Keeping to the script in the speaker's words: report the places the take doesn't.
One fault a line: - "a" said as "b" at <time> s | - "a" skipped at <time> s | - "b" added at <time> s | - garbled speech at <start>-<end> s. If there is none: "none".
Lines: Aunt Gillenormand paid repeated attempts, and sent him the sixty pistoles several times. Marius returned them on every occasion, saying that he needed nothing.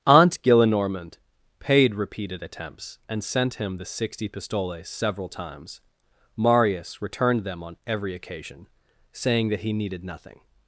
none